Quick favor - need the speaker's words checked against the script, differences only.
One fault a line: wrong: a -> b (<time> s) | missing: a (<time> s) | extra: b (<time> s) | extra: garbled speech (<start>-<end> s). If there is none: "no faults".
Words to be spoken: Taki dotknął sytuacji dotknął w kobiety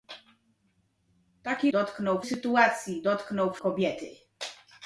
no faults